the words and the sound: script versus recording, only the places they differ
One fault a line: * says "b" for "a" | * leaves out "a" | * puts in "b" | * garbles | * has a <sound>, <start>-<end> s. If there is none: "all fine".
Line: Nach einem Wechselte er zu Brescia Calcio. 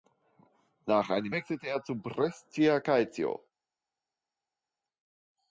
all fine